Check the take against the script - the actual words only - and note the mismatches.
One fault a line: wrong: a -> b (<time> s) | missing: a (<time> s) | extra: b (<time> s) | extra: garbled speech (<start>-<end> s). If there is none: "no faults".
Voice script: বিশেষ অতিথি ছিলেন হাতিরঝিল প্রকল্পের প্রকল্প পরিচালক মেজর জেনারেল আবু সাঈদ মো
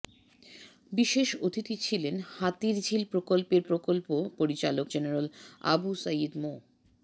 missing: মেজর (4.9 s)